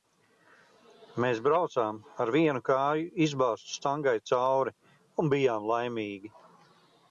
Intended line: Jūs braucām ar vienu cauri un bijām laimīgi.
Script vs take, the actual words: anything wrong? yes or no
yes